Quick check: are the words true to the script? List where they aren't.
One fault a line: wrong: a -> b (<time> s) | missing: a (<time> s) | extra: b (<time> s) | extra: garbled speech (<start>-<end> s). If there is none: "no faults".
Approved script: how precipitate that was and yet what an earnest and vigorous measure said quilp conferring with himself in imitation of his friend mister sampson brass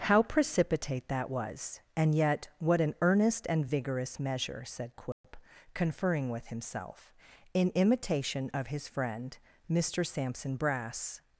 no faults